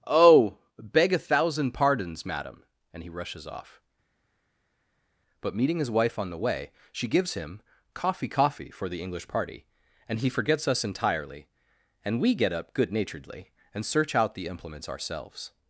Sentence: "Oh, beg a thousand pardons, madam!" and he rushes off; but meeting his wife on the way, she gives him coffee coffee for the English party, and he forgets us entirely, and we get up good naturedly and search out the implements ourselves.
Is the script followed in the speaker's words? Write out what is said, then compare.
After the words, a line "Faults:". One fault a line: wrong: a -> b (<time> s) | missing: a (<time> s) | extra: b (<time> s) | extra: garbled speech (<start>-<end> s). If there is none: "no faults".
"Oh, beg a thousand pardons, madam!" and he rushes off; but meeting his wife on the way, she gives him coffee coffee for the English party, and he forgets us entirely, and we get up good naturedly and search out the implements ourselves.
Faults:
no faults